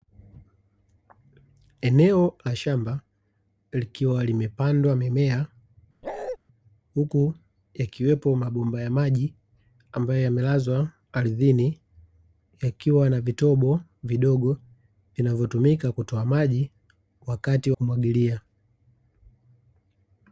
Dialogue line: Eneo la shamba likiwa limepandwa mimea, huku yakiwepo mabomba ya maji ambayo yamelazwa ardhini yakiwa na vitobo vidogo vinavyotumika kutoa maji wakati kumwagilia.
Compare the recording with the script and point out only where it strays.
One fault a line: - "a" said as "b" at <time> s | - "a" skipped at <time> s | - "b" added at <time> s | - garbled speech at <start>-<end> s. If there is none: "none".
none